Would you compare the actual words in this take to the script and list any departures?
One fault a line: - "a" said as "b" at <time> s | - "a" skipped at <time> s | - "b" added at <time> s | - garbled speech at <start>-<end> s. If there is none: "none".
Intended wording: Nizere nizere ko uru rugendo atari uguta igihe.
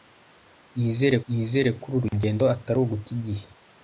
none